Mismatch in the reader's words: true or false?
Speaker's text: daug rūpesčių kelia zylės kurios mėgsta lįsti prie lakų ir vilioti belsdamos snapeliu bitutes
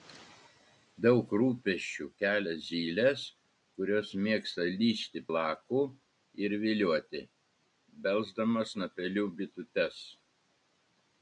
true